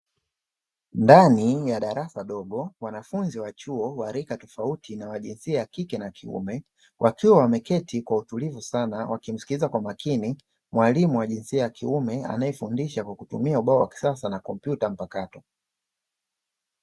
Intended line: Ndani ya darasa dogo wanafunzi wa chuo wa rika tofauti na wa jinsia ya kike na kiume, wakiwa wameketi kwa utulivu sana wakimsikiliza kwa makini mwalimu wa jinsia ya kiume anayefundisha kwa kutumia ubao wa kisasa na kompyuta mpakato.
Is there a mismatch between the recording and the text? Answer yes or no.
no